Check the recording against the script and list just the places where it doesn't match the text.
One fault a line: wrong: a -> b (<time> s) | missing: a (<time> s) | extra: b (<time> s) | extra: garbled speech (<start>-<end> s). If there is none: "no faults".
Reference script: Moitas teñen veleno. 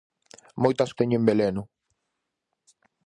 no faults